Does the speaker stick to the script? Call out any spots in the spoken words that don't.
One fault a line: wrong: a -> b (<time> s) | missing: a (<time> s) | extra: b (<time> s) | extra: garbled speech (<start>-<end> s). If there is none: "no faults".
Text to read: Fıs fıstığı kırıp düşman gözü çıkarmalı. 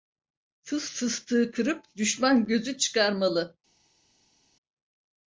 no faults